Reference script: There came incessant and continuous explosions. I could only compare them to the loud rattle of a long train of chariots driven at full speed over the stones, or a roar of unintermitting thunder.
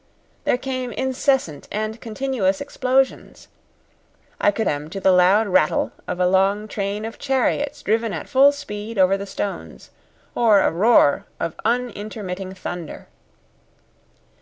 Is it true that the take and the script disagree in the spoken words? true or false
true